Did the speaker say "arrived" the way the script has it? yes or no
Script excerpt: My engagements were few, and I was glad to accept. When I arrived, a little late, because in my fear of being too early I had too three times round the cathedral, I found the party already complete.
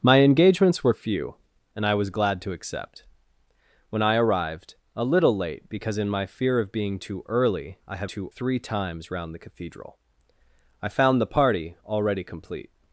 yes